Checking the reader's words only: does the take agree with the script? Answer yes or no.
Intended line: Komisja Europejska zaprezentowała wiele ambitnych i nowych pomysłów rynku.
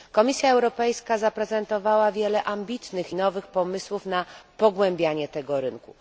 no